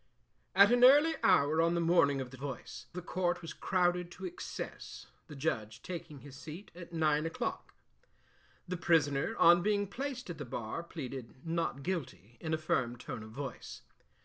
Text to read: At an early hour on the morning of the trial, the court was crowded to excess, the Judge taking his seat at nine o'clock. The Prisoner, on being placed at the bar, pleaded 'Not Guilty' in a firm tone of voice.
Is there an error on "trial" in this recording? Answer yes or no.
yes